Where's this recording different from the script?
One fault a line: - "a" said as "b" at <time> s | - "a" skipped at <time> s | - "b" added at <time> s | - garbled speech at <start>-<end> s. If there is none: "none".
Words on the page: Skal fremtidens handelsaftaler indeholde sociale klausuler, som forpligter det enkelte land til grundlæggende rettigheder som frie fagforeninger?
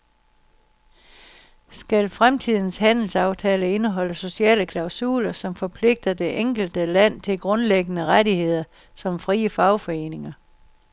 none